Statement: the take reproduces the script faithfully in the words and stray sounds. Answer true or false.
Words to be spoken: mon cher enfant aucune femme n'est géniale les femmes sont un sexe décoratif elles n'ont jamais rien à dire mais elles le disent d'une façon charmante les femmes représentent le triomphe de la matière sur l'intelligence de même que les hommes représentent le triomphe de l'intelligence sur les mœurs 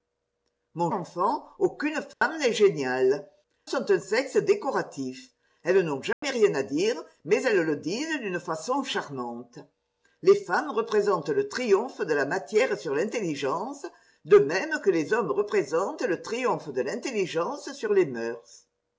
false